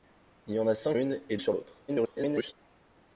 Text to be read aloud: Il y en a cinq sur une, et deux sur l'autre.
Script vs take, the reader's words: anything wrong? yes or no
yes